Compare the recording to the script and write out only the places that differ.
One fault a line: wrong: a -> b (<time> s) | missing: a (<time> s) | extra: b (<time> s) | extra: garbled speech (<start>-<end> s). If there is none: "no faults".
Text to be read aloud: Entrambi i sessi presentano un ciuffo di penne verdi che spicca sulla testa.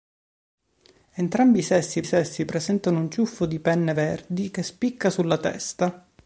extra: sessi (2.0 s)